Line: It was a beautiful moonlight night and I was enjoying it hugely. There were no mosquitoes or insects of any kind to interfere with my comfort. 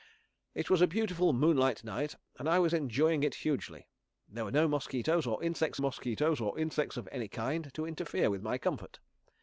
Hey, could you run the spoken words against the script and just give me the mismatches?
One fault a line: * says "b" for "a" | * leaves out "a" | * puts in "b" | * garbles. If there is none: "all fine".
* puts in "mosquitoes or insects"